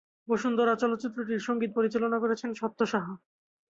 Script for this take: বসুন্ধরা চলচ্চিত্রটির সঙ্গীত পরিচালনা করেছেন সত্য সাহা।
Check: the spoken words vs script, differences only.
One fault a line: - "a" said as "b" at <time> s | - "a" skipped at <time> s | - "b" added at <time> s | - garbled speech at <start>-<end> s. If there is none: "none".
none